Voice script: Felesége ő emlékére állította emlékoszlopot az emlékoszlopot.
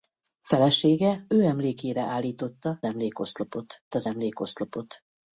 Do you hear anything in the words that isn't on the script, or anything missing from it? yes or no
no